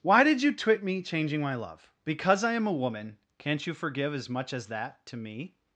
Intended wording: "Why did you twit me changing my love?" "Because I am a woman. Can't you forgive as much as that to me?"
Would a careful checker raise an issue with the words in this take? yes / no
no